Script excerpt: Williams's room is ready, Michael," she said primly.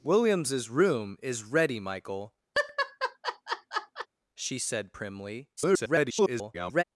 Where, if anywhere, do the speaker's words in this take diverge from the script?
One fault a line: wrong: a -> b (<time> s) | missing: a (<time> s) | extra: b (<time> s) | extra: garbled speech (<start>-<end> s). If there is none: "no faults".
extra: garbled speech (5.6-6.8 s)